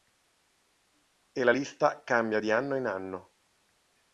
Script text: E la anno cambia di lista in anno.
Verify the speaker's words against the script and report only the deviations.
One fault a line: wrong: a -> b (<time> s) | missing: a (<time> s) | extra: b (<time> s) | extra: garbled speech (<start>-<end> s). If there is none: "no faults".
wrong: anno -> lista (1.5 s)
wrong: lista -> anno (2.5 s)